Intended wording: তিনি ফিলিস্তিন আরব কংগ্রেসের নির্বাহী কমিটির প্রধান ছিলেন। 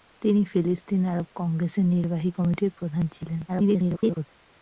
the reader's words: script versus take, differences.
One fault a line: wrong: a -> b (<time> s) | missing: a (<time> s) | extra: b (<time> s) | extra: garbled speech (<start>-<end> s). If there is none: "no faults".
extra: garbled speech (3.5-4.3 s)